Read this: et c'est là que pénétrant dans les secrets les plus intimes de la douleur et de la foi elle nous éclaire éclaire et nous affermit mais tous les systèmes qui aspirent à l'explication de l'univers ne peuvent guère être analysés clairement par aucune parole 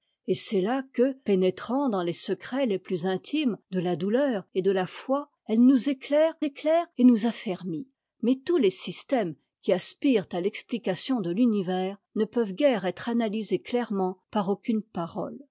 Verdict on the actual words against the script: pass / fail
pass